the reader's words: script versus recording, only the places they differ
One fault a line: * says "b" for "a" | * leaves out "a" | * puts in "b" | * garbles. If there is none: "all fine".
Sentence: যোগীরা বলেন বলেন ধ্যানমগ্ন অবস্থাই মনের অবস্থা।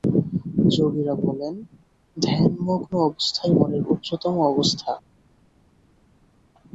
* leaves out "বলেন"
* puts in "উচ্চতম"